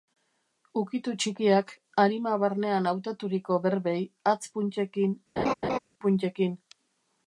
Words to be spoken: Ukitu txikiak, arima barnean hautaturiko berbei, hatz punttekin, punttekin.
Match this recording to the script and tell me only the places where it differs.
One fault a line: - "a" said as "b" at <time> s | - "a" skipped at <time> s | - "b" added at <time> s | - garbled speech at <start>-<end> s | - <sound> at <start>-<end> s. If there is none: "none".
- laugh at 5.4-5.8 s